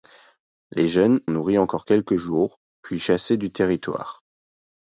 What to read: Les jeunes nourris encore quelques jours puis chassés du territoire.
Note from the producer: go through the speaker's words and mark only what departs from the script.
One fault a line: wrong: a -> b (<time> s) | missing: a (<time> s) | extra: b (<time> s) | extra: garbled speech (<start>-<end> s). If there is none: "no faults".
no faults